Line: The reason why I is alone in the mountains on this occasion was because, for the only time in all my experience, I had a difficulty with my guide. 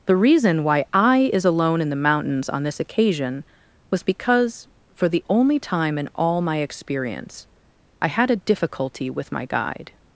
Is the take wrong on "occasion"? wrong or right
right